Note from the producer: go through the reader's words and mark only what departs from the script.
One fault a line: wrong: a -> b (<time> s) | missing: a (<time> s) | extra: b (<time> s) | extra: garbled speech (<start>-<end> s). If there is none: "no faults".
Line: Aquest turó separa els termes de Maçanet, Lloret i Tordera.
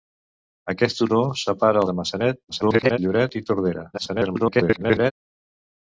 missing: els termes (1.8 s)
extra: garbled speech (2.5-3.0 s)
extra: garbled speech (3.9-5.1 s)